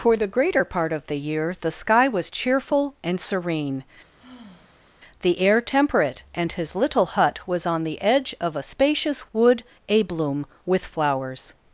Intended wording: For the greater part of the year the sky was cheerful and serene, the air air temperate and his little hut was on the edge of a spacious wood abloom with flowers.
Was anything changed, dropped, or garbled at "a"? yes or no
no